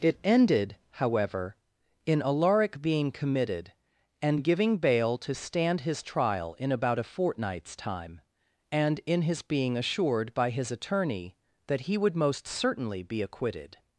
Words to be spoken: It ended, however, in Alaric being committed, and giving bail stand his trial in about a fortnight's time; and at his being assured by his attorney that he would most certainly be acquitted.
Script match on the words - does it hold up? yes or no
no